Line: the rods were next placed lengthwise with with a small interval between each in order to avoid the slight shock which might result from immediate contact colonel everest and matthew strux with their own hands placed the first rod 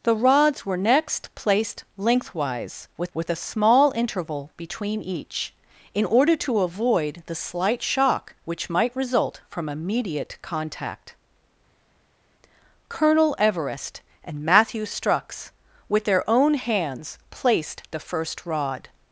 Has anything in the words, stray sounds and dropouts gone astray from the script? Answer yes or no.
no